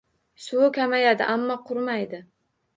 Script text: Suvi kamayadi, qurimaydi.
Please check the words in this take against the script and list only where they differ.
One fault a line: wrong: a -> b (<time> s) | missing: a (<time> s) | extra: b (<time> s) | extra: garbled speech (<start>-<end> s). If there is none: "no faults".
extra: ammo (1.3 s)